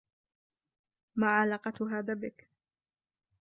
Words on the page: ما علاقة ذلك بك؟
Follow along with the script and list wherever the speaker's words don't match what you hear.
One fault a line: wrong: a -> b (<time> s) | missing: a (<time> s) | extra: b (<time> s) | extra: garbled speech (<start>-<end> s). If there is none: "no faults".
wrong: ذلك -> هذا (2.0 s)